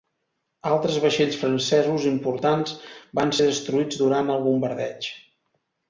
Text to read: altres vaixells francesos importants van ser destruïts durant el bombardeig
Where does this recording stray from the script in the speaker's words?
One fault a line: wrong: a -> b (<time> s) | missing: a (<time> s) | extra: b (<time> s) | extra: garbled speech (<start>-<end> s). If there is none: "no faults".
no faults